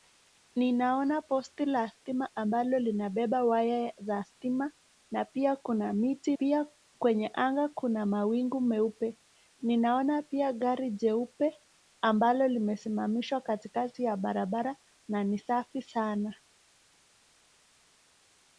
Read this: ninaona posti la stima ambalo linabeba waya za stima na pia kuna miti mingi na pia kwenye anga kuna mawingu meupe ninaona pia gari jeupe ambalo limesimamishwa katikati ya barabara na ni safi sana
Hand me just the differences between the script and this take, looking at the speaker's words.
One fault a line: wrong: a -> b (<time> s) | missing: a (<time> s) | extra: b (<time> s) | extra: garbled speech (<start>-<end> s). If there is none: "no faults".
missing: mingi na (6.4 s)